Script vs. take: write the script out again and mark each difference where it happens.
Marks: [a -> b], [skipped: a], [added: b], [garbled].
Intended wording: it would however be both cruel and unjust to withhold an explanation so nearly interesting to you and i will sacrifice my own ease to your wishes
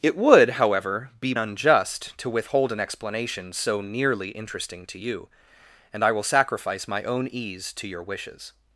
it would however be [skipped: both cruel and] unjust to withhold an explanation so nearly interesting to you and i will sacrifice my own ease to your wishes